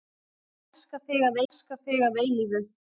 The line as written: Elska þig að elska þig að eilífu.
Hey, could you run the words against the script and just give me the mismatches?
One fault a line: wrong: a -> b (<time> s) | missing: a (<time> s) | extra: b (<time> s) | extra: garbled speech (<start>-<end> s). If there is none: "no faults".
no faults